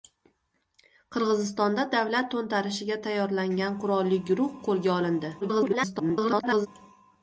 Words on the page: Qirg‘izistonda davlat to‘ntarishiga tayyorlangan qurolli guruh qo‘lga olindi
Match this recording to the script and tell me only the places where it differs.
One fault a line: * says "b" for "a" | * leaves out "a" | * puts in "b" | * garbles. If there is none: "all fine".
* garbles